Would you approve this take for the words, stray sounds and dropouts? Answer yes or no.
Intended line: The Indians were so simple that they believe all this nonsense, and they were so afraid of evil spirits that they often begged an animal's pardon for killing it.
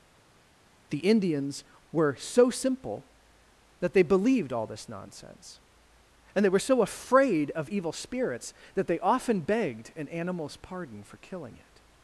no